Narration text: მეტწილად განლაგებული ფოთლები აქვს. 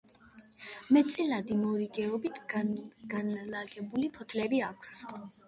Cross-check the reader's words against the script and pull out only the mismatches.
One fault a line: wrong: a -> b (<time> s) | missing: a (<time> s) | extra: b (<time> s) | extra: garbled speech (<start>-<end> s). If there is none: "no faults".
extra: მორიგეობით (1.6 s)